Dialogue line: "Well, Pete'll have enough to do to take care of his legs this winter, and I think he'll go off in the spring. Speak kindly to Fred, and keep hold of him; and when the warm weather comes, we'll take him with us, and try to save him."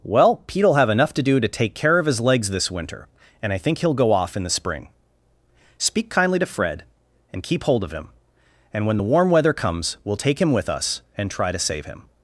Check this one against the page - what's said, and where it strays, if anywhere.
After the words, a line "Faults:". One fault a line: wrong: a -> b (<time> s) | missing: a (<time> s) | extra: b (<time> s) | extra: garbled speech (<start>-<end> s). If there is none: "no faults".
"Well, Pete'll have enough to do to take care of his legs this winter, and I think he'll go off in the spring. Speak kindly to Fred, and keep hold of him; and when the warm weather comes, we'll take him with us, and try to save him."
Faults:
no faults